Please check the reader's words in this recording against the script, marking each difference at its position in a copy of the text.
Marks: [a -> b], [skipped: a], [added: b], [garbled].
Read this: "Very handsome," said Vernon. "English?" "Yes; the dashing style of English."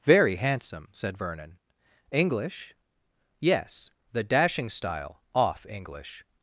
"Very handsome," said Vernon. "English?" "Yes; the dashing style [of -> off] English."